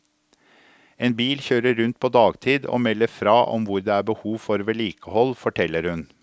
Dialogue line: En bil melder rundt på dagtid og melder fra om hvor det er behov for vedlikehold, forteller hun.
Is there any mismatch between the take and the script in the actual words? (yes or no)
yes